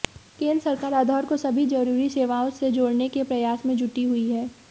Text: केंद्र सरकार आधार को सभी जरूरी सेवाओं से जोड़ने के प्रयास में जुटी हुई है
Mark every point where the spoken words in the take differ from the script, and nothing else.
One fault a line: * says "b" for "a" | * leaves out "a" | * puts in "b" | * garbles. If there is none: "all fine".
all fine